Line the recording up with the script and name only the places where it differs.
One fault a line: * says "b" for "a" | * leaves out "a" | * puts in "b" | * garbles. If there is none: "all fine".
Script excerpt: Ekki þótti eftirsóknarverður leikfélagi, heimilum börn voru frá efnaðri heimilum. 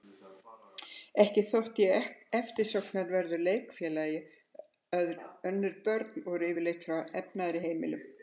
* puts in "ég"
* says "önnur" for "heimilum"
* puts in "yfirleitt"